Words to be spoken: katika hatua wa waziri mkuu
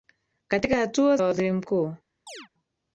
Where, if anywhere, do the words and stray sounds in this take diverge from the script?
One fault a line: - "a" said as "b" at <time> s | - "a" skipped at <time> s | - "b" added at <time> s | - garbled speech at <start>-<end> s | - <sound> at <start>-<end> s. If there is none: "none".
- chirp at 2.3-2.5 s